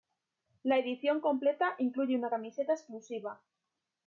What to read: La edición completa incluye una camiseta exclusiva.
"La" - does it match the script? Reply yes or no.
yes